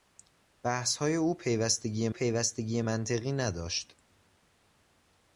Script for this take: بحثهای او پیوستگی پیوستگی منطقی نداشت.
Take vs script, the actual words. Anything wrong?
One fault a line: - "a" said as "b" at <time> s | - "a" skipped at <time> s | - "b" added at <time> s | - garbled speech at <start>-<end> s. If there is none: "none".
none